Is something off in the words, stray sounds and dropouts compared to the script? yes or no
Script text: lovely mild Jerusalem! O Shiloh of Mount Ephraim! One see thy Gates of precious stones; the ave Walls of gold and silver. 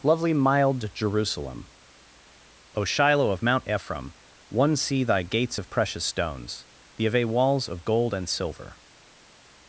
no